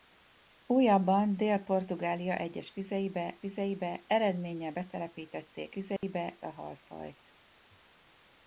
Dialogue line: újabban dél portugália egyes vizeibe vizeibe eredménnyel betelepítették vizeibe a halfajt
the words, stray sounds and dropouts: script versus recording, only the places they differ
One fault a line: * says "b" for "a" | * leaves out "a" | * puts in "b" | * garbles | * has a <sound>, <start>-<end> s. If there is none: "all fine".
* has a dropout, 6.0-6.0 s